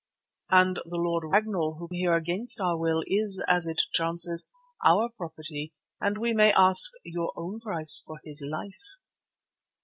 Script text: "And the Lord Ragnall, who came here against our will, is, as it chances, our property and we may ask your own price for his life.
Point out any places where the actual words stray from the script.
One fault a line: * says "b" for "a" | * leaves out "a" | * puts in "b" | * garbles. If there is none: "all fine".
* leaves out "came"